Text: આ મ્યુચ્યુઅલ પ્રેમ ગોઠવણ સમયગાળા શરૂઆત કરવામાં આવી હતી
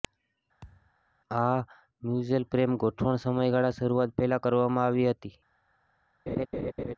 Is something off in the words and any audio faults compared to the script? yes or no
yes